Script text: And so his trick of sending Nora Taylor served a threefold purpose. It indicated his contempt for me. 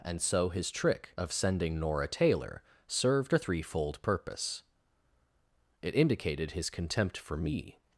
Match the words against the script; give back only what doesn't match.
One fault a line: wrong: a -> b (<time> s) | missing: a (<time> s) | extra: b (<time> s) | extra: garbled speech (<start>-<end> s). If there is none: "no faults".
no faults